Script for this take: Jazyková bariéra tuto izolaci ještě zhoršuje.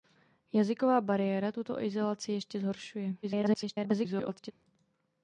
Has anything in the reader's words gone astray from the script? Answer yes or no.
yes